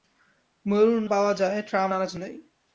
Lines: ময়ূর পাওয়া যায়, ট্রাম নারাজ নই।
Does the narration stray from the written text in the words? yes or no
no